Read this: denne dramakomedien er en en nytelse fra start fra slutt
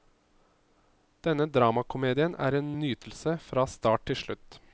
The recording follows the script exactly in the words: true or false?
false